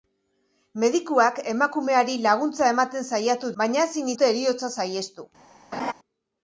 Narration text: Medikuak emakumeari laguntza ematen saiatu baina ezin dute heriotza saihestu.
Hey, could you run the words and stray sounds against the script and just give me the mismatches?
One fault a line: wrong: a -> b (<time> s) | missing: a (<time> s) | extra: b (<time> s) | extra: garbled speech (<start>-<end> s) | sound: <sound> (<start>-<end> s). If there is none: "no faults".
sound: laugh (5.7-5.9 s)